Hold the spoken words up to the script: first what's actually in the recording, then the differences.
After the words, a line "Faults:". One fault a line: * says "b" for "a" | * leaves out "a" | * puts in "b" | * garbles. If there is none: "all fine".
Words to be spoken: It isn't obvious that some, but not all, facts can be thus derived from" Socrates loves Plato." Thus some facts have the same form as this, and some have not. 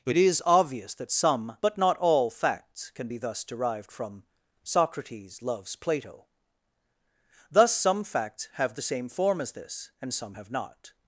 It is obvious that some, but not all, facts can be thus derived from" Socrates loves Plato." Thus some facts have the same form as this, and some have not.
Faults:
* says "is" for "isn't"